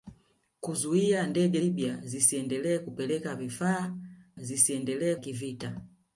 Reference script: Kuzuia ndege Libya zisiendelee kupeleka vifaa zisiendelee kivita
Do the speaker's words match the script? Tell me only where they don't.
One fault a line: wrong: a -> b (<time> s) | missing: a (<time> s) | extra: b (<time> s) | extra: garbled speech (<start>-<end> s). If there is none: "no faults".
no faults